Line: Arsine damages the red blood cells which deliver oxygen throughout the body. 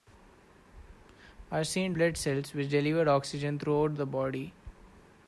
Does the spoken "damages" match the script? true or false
false